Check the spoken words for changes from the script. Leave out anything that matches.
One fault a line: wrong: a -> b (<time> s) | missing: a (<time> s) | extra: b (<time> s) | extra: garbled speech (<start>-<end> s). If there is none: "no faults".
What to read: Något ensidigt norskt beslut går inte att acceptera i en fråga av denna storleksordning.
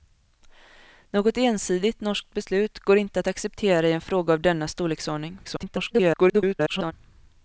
extra: garbled speech (5.4-6.9 s)